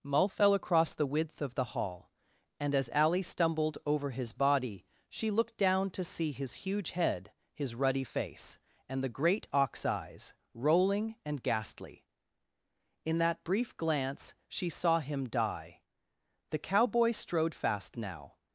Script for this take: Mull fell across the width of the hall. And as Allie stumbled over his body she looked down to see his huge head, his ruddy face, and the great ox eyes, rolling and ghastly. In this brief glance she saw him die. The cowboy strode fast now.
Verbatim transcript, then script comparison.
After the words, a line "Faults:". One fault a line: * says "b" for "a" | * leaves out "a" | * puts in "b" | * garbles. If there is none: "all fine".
Mull fell across the width of the hall. And as Allie stumbled over his body she looked down to see his huge head, his ruddy face, and the great ox eyes, rolling and ghastly. In that brief glance she saw him die. The cowboy strode fast now.
Faults:
* says "that" for "this"